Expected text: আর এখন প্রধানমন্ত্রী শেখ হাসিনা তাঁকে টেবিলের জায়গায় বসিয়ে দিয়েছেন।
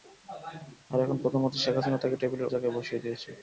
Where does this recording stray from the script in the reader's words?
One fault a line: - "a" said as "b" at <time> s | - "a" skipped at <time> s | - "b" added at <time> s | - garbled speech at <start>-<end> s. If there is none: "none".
none